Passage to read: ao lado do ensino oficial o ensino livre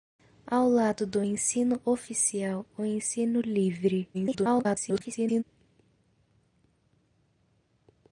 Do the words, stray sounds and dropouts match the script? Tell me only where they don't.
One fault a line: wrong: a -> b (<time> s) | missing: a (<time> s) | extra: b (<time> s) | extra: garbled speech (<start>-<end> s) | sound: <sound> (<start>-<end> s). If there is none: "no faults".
extra: garbled speech (4.1-5.4 s)